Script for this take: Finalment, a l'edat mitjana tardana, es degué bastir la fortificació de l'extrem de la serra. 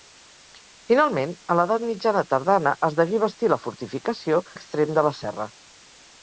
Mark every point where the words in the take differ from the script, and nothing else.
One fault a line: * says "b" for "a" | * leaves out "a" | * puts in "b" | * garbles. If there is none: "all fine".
* leaves out "de"